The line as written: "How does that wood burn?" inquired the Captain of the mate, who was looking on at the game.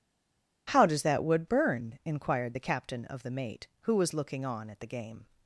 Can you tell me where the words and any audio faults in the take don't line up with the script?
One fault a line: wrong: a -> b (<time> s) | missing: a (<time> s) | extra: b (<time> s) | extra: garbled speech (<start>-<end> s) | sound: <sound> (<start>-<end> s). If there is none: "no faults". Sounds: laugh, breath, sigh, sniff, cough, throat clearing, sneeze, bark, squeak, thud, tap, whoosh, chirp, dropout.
no faults